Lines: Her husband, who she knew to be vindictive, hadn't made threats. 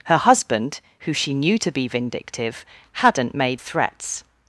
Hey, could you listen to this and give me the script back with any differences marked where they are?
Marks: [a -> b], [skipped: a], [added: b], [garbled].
Her husband, who she knew to be vindictive, hadn't made threats.